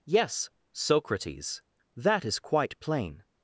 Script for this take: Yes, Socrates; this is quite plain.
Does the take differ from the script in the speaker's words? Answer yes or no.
yes